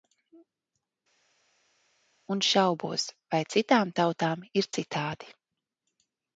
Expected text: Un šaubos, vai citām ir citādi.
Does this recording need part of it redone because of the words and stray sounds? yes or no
yes